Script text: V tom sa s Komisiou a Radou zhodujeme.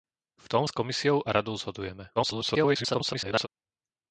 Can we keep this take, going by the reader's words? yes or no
no